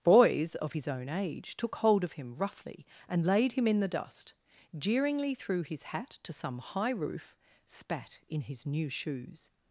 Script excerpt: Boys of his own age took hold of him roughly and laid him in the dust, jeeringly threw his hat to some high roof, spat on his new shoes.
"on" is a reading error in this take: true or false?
true